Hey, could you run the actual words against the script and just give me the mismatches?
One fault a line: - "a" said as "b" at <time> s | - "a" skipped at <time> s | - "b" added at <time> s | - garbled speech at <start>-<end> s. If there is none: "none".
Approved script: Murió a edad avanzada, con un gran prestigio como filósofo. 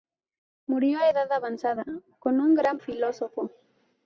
- "prestigio como" skipped at 2.8 s